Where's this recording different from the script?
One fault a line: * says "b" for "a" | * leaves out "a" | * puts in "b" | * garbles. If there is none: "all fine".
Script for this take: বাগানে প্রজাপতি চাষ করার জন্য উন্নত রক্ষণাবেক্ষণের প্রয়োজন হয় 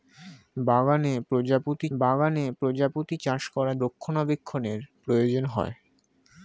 * puts in "বাগানে প্রজাপতি"
* leaves out "জন্য উন্নত"